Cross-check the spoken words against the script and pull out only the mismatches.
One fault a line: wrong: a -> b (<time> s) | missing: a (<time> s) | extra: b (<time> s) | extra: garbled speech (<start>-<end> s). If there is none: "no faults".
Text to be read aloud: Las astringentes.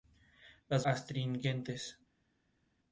no faults